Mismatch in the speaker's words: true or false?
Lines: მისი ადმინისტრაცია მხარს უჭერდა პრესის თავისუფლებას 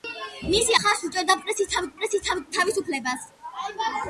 true